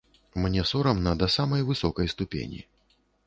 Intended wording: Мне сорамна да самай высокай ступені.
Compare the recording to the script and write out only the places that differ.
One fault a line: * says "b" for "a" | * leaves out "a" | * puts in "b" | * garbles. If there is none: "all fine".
all fine